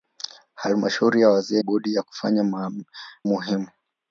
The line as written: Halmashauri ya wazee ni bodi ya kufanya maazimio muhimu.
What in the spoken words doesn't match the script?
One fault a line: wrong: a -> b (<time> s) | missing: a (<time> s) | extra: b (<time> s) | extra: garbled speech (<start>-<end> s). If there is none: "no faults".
missing: ni (1.6 s)
missing: maazimio (2.4 s)